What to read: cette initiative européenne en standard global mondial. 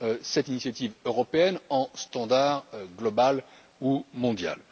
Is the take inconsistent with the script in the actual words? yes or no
yes